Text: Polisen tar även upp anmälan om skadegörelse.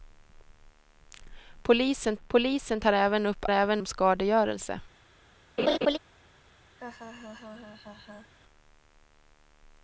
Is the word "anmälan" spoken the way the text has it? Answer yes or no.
no